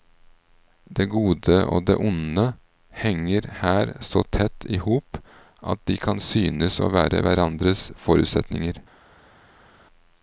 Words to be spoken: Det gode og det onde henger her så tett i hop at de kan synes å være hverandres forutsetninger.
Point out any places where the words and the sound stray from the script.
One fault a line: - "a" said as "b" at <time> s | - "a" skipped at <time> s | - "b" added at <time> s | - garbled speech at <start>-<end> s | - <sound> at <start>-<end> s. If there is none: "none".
none